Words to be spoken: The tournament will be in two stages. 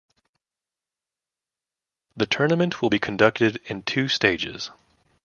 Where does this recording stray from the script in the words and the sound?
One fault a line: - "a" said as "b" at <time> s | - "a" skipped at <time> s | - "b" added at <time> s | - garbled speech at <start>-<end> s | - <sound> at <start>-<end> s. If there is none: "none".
- "conducted" added at 3.0 s